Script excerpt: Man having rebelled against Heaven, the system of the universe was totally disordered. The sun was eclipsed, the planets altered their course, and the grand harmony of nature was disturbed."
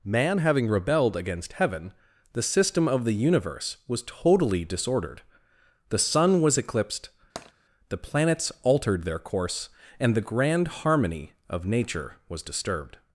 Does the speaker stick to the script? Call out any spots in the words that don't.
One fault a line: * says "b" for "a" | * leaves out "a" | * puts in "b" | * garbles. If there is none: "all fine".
all fine